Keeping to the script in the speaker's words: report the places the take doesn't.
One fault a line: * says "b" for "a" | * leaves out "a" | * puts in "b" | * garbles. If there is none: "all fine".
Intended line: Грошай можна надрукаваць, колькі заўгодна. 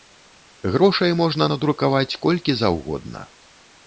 all fine